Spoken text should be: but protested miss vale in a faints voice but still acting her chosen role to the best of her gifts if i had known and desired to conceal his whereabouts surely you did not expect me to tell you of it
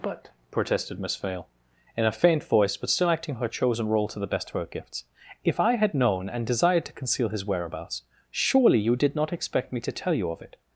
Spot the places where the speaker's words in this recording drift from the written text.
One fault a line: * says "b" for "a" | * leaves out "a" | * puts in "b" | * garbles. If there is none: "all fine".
* says "faint" for "faints"